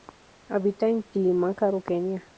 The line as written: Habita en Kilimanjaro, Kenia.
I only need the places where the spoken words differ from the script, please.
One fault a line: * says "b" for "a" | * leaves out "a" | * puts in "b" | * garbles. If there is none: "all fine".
all fine